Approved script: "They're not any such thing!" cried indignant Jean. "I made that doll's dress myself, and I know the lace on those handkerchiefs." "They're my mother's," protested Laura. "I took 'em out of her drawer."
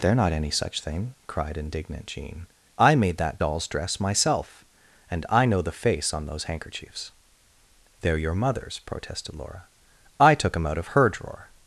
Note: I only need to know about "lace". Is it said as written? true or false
false